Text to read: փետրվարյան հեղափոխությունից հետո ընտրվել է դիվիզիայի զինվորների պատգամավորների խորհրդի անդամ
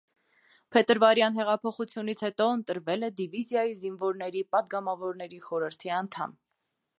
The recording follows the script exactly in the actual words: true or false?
true